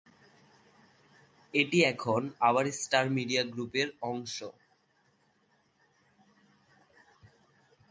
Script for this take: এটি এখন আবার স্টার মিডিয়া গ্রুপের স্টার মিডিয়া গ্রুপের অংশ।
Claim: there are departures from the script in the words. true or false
true